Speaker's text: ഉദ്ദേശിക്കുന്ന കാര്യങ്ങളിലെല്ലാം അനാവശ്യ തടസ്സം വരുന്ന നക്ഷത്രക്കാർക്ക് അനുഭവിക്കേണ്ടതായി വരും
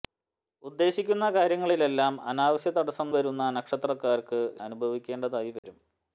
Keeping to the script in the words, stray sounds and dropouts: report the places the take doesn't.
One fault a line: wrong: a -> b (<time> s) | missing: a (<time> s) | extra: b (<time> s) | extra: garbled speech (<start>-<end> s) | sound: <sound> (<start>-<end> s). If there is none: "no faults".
sound: dropout (5.6-5.6 s)